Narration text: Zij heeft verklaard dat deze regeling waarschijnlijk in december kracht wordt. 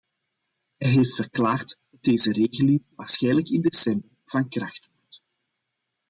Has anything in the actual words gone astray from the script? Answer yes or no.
yes